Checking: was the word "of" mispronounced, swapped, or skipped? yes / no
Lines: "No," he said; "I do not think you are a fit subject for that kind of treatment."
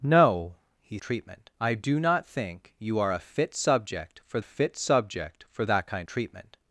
yes